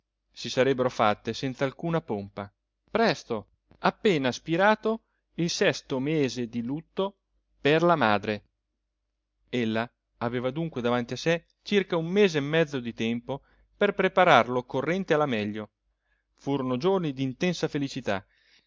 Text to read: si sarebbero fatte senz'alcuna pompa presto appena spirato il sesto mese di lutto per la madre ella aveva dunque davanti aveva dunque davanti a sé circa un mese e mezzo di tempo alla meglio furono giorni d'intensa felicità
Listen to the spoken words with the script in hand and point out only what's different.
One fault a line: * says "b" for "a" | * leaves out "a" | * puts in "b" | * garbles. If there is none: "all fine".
* leaves out "aveva dunque davanti"
* puts in "per preparar l'occorrente"